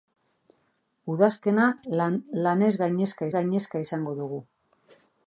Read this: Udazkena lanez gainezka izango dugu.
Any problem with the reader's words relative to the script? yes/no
yes